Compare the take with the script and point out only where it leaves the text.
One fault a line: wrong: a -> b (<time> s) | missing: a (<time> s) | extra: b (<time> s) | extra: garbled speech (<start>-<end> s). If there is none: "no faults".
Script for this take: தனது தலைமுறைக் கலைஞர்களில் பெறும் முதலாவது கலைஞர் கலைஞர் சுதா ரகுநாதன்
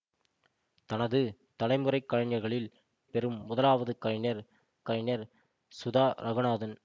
no faults